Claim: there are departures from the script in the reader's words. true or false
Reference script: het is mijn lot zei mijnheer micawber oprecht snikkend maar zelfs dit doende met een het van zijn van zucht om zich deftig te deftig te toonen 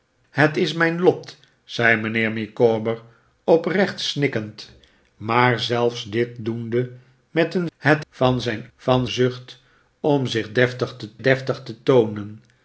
false